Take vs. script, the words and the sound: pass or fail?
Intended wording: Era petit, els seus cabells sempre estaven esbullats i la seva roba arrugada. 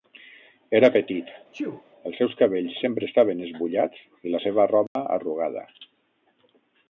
fail